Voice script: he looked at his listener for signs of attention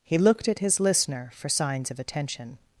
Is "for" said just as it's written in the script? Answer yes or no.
yes